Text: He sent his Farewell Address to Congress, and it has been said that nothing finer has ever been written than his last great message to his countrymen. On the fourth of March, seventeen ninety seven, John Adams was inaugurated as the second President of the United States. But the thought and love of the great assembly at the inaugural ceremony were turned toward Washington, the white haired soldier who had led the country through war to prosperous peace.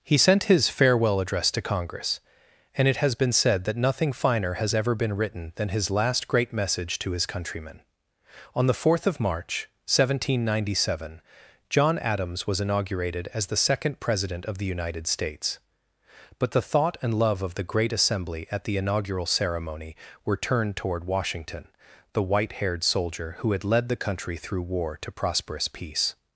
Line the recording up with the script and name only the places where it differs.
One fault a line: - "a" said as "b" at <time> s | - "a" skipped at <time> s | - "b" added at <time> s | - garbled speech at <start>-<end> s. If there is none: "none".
none